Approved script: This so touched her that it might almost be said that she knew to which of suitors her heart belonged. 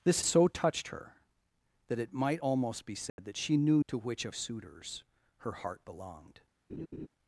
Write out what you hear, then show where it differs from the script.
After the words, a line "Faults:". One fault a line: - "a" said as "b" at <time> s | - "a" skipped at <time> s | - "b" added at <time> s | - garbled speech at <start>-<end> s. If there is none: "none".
This so touched her that it might almost be said that she knew to which of suitors her heart belonged.
Faults:
none